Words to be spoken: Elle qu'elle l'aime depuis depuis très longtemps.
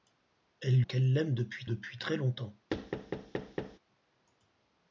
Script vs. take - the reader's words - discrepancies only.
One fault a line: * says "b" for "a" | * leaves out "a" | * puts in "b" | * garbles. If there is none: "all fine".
all fine